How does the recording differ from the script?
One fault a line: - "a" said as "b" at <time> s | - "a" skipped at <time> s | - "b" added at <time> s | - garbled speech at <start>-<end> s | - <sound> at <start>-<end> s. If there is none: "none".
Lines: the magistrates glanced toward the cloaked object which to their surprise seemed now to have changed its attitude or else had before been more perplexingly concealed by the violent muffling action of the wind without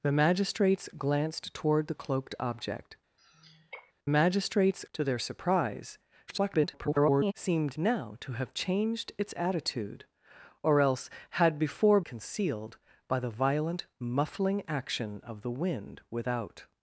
- sigh at 3.2-3.9 s
- "which" said as "magistrates" at 4.1 s
- garbled speech at 6.3-7.3 s
- "been more perplexingly" skipped at 12.0 s